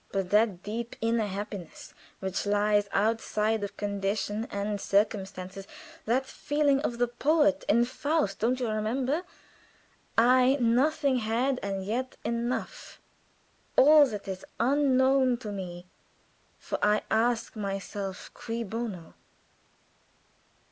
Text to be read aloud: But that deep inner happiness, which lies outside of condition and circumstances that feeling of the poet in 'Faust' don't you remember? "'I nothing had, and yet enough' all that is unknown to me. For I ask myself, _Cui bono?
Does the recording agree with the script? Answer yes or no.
yes